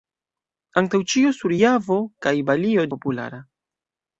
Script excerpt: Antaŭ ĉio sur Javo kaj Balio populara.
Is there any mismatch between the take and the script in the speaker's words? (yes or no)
no